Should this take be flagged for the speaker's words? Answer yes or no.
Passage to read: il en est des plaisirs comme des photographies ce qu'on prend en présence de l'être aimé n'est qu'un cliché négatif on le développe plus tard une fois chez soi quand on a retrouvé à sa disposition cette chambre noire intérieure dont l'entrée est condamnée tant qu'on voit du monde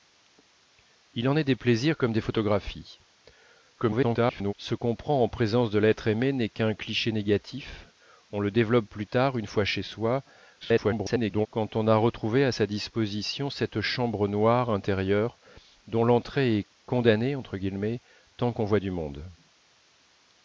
yes